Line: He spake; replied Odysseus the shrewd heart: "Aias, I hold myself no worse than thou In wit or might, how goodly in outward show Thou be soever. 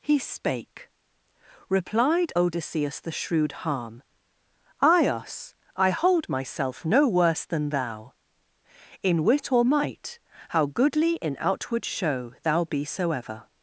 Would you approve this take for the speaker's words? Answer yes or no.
no